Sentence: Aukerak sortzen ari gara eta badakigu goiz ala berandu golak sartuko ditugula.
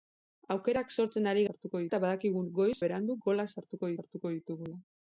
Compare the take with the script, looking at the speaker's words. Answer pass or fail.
fail